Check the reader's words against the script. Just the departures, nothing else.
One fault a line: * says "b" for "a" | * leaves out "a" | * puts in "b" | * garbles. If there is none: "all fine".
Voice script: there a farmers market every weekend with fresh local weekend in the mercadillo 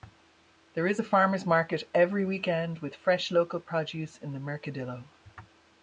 * puts in "is"
* says "produce" for "weekend"